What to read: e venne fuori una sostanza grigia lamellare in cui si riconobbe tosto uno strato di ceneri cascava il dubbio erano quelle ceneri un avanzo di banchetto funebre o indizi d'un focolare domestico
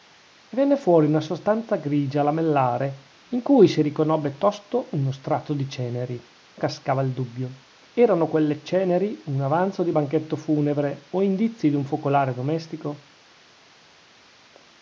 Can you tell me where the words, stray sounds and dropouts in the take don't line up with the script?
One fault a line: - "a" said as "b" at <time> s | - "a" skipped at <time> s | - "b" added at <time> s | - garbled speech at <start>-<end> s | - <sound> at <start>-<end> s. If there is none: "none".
none